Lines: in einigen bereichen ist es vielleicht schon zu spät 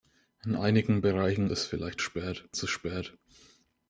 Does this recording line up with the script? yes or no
no